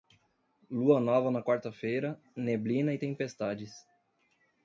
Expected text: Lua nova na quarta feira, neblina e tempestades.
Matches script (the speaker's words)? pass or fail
pass